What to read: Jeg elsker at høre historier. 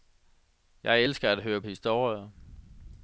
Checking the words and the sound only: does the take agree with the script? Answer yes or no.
yes